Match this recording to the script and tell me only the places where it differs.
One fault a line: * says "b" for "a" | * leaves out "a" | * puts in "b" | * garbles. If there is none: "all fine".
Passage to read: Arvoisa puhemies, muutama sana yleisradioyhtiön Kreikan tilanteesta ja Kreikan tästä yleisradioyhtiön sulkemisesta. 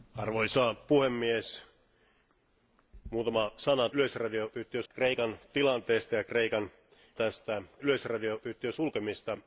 all fine